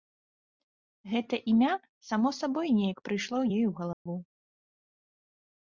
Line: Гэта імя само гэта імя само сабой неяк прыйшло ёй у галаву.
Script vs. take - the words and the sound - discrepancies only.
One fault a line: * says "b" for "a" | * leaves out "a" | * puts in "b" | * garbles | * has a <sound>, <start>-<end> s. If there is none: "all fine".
* leaves out "гэта імя само"
* has a dropout, 3.9-4.1 s